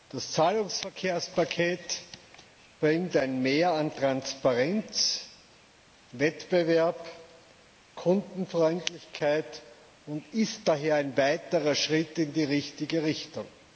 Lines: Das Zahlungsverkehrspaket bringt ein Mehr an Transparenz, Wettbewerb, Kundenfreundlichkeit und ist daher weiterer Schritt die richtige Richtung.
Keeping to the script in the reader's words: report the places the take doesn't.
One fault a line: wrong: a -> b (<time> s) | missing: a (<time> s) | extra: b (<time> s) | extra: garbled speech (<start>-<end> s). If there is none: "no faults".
extra: ein (10.9 s)
extra: in (12.2 s)